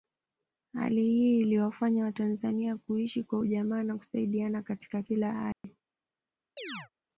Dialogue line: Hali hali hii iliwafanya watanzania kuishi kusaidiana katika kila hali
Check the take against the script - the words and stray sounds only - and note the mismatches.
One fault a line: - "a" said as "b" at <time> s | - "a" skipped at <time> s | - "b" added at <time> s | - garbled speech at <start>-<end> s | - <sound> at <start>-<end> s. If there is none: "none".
- "hali" skipped at 1.0 s
- "kwa ujamaa na" added at 3.2 s
- dropout at 5.5-5.6 s
- chirp at 6.6-6.9 s